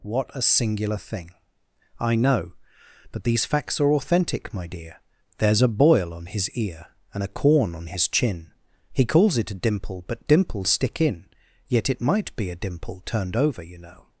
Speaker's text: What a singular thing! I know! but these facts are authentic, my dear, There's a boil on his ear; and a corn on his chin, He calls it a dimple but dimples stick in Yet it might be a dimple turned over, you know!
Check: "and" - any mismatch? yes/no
no